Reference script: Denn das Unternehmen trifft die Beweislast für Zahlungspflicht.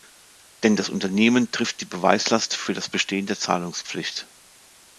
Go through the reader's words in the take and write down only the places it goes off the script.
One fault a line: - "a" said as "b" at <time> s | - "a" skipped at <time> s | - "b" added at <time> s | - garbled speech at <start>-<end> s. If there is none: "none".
- "das Bestehen der" added at 2.7 s